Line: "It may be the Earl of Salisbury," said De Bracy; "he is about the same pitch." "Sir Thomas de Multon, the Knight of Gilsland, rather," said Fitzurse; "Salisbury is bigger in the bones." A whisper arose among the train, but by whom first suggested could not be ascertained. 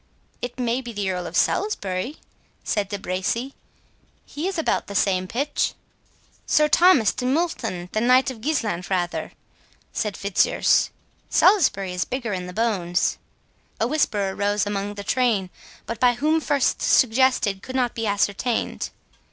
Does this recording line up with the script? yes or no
yes